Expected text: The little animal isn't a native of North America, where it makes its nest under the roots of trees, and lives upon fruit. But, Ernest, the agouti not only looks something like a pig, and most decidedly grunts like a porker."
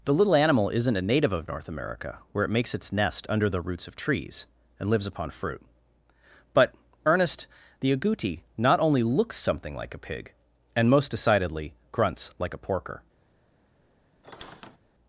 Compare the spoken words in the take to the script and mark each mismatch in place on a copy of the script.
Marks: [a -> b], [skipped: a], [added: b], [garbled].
The little animal isn't a native of North America, where it makes its nest under the roots of trees, and lives upon fruit. But, Ernest, the agouti not only looks something like a pig, and most decidedly grunts like a porker."